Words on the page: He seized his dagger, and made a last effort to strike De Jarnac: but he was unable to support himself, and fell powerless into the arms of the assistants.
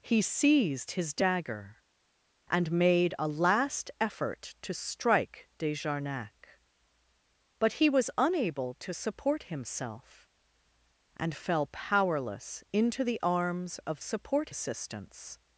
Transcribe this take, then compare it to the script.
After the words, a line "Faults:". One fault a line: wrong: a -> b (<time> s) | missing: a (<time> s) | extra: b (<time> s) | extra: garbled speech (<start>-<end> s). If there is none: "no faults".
He seized his dagger, and made a last effort to strike De Jarnac: but he was unable to support himself, and fell powerless into the arms of support assistants.
Faults:
wrong: the -> support (14.0 s)